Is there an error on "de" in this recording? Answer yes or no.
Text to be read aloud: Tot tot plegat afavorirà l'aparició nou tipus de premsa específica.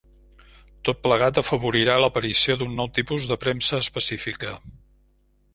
no